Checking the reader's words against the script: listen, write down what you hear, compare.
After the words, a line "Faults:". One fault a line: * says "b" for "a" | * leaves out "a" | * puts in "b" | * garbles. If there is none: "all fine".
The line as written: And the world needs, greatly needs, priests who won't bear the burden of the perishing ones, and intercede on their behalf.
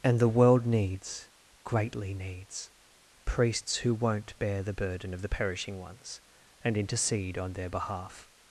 And the world needs, greatly needs, priests who won't bear the burden of the perishing ones, and intercede on their behalf.
Faults:
all fine